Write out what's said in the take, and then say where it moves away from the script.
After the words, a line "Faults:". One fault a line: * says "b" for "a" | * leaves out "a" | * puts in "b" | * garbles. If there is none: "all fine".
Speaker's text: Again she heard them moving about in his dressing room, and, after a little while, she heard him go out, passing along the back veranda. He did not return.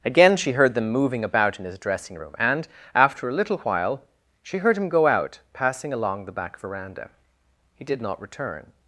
Again she heard them moving about in his dressing room, and, after a little while, she heard him go out, passing along the back veranda. He did not return.
Faults:
all fine